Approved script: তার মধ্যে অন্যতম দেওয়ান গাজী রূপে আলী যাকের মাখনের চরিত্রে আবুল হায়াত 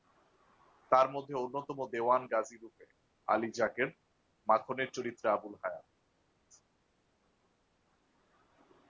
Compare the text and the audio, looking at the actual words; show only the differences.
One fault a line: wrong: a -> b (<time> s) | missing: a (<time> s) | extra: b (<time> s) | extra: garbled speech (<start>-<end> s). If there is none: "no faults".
no faults